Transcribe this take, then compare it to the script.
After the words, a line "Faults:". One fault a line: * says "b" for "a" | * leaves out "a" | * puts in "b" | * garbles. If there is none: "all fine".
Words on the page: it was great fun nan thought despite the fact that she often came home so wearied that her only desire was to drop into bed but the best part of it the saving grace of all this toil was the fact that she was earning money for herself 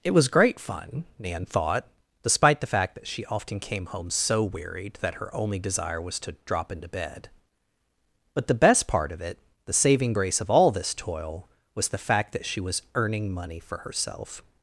it was great fun nan thought despite the fact that she often came home so wearied that her only desire was to drop into bed but the best part of it the saving grace of all this toil was the fact that she was earning money for herself
Faults:
all fine